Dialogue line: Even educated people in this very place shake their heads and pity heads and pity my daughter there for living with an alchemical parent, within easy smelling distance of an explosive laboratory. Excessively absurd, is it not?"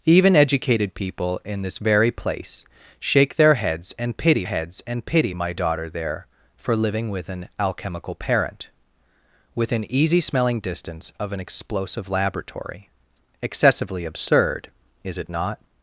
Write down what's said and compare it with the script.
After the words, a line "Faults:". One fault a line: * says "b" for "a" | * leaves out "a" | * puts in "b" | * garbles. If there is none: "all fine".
Even educated people in this very place shake their heads and pity heads and pity my daughter there for living with an alchemical parent, within easy smelling distance of an explosive laboratory. Excessively absurd, is it not?"
Faults:
all fine